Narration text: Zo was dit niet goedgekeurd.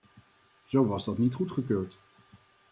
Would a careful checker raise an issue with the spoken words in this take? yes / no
yes